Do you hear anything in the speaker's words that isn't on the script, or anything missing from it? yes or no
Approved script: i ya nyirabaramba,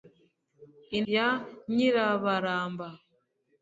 no